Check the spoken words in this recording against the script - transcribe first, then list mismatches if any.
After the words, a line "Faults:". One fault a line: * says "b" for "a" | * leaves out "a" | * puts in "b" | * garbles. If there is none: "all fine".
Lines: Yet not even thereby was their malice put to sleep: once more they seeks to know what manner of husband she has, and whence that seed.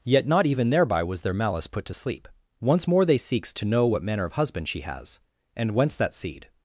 Yet not even thereby was their malice put to sleep: once more they seeks to know what manner of husband she has, and whence that seed.
Faults:
all fine